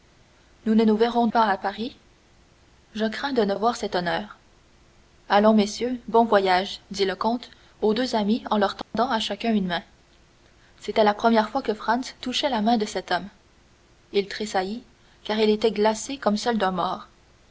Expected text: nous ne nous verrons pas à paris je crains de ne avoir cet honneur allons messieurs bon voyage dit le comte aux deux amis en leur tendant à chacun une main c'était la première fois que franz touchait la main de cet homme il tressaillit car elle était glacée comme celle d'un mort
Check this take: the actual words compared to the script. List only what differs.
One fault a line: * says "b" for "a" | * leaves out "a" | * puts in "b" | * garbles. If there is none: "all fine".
all fine